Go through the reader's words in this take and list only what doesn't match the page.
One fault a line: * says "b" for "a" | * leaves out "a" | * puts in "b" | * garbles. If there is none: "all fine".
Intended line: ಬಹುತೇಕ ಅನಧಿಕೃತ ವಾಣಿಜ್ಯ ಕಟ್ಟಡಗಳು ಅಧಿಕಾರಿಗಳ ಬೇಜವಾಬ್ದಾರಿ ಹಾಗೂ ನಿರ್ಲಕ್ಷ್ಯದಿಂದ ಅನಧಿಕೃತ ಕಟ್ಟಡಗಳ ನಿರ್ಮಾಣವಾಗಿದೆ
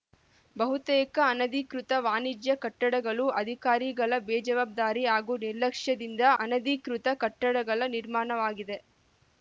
all fine